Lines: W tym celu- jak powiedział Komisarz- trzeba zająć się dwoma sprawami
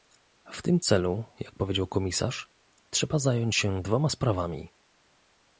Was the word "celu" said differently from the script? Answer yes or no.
no